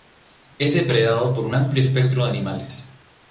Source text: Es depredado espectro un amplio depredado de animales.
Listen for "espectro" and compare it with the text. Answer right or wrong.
wrong